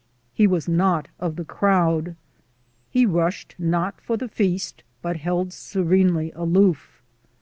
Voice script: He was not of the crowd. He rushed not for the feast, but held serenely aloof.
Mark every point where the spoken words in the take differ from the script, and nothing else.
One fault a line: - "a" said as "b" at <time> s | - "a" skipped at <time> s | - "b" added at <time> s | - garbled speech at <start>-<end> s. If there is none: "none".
none